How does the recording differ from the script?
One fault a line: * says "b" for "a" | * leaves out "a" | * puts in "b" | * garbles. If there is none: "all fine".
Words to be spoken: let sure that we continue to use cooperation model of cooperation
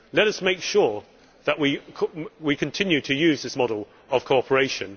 * puts in "us make"
* says "this" for "cooperation"